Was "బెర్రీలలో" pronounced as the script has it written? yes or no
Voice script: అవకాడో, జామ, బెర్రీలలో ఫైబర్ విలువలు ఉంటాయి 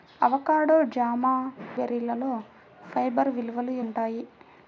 yes